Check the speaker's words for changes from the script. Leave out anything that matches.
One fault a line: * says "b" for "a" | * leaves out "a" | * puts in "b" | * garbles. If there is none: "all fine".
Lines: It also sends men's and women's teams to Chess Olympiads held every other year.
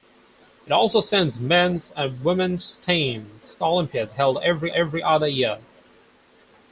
* leaves out "to Chess"
* puts in "every"